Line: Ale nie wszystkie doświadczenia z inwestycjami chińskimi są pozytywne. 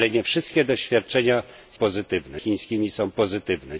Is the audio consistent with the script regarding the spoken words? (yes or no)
no